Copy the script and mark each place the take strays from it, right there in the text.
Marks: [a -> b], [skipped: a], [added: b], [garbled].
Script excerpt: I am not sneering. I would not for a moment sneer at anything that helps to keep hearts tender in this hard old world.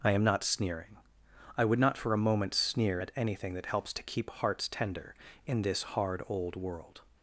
I am not sneering. I would not for a moment sneer at anything that helps to keep hearts tender in this hard old world.